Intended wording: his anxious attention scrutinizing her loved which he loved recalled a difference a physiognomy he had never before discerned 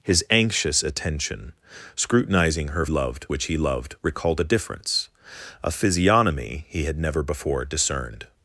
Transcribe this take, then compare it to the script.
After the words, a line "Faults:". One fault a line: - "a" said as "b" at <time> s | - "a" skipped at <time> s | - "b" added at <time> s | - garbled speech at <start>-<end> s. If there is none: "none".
his anxious attention scrutinizing her loved which he loved recalled a difference a physiognomy he had never before discerned
Faults:
none